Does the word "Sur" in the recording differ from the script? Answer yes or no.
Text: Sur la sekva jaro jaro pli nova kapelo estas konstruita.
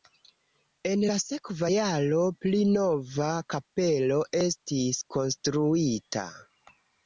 yes